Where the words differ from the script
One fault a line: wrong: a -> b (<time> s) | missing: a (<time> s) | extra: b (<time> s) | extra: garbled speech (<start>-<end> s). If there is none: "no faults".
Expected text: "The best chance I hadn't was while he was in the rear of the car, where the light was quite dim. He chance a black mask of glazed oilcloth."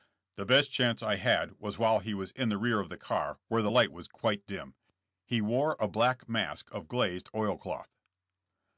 wrong: hadn't -> had (1.2 s)
wrong: chance -> wore (5.4 s)